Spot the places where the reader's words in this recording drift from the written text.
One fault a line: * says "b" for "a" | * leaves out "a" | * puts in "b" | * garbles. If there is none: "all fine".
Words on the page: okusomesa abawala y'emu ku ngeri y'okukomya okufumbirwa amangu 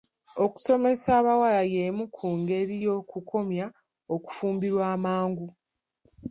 all fine